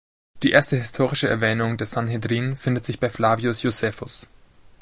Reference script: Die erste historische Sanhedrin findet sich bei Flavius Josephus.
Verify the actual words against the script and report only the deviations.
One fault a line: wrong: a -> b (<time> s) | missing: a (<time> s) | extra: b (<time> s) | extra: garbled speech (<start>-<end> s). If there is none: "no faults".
extra: Erwähnung des (1.3 s)